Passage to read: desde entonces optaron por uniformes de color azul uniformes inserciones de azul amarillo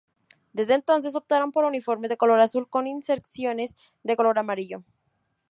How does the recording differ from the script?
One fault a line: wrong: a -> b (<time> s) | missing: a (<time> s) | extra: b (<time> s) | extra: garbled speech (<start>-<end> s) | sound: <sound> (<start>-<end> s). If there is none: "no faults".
wrong: uniformes -> con (2.7 s)
wrong: azul -> color (4.1 s)